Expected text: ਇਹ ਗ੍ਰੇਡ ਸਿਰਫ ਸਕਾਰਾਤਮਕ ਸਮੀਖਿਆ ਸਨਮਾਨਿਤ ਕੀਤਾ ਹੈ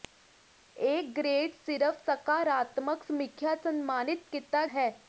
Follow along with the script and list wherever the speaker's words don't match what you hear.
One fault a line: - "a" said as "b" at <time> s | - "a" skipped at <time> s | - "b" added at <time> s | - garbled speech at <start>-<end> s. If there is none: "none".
none